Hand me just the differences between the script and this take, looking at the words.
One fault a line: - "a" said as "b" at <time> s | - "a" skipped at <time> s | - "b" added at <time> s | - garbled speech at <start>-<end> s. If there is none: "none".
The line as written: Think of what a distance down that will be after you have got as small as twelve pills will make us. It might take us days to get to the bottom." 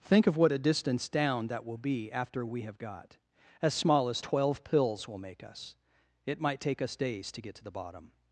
- "you" said as "we" at 2.5 s